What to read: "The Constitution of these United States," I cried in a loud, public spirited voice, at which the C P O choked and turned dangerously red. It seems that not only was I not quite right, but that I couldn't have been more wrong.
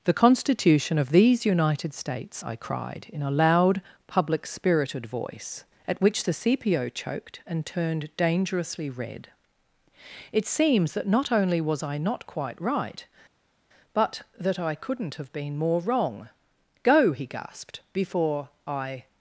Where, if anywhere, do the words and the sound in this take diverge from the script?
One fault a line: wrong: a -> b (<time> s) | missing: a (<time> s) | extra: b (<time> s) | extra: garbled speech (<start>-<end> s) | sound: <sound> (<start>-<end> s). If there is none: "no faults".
extra: Go he gasped before I (16.8 s)